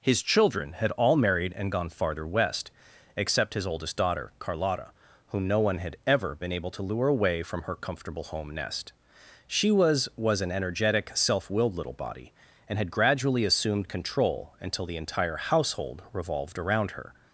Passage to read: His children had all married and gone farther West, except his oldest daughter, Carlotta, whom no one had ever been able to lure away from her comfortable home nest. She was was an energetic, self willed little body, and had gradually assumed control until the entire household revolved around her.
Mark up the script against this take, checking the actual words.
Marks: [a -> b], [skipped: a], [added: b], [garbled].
His children had all married and gone farther West, except his oldest daughter, Carlotta, whom no one had ever been able to lure away from her comfortable home nest. She was was an energetic, self willed little body, and had gradually assumed control until the entire household revolved around her.